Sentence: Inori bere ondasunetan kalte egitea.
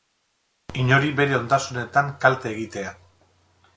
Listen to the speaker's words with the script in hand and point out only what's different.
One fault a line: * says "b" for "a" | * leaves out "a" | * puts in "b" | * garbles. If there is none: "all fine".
all fine